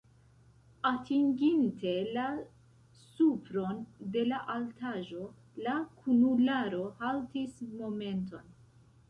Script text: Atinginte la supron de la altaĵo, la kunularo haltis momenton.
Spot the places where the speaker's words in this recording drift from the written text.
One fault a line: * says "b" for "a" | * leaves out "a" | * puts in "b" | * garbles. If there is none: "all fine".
all fine